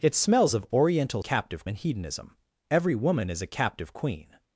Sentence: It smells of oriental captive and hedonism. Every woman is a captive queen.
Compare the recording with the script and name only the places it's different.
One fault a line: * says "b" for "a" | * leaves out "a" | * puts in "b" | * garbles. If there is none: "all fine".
all fine